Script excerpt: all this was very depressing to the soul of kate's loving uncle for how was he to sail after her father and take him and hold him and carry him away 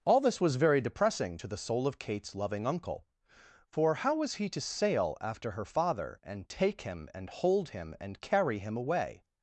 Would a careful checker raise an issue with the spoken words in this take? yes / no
no